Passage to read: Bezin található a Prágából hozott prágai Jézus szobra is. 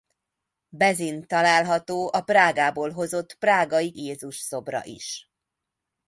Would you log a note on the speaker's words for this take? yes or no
no